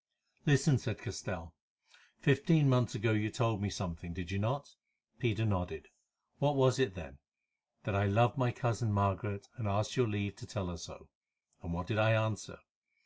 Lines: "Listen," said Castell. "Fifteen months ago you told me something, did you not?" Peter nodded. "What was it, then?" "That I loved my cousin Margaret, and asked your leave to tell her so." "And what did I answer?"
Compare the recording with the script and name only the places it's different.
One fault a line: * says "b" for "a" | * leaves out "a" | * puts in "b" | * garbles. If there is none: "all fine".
all fine